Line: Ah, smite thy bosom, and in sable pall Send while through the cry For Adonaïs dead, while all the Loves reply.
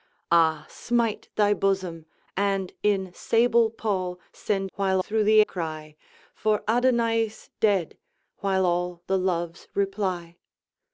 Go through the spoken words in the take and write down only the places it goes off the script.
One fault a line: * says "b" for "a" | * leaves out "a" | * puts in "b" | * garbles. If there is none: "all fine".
all fine